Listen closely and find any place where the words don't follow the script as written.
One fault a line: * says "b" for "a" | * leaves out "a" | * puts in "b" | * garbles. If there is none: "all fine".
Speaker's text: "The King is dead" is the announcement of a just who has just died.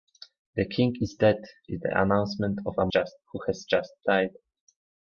all fine